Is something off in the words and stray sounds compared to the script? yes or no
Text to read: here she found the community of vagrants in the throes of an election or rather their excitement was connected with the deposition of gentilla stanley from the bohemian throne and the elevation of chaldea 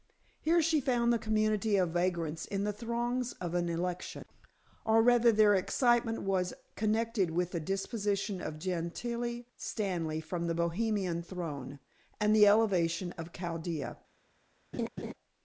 yes